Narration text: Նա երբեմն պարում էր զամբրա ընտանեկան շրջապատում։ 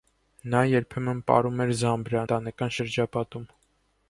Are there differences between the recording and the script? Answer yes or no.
no